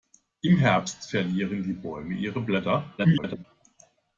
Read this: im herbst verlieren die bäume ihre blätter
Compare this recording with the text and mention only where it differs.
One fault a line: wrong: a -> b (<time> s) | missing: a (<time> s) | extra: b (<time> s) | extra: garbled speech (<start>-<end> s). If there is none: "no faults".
extra: garbled speech (3.0-3.4 s)